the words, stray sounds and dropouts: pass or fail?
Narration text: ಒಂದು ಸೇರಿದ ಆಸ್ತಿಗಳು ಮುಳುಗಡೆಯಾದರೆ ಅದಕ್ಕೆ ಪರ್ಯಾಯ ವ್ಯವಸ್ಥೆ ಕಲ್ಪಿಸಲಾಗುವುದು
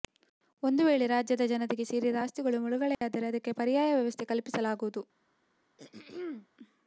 fail